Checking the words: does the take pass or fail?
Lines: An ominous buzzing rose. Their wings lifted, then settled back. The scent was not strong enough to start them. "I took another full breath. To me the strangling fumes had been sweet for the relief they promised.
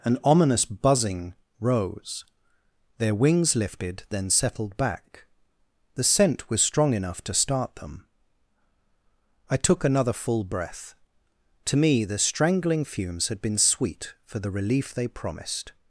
fail